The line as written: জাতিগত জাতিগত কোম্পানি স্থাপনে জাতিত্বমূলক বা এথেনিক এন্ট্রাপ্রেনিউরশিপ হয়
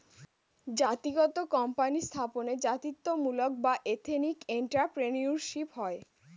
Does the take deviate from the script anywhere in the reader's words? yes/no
yes